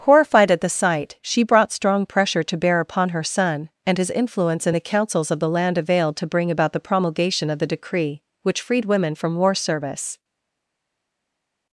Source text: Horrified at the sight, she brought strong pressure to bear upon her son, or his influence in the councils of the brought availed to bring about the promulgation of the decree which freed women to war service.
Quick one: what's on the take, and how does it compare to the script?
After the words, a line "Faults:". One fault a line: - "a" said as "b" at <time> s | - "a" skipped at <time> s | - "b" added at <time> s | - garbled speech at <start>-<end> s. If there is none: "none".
Horrified at the sight, she brought strong pressure to bear upon her son, and his influence in the councils of the land availed to bring about the promulgation of the decree which freed women from war service.
Faults:
- "or" said as "and" at 3.9 s
- "brought" said as "land" at 5.5 s
- "to" said as "from" at 9.1 s